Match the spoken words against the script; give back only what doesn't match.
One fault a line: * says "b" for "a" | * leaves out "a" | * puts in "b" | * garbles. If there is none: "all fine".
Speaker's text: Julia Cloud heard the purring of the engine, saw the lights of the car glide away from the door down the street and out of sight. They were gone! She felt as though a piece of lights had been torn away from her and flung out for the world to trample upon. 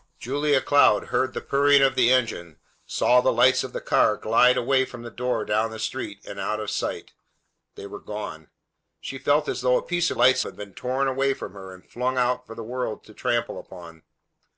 all fine